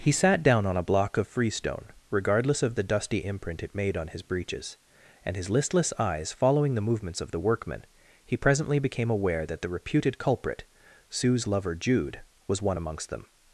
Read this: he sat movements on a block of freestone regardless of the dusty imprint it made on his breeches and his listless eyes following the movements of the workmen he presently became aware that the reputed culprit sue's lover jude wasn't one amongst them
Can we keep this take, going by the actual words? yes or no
no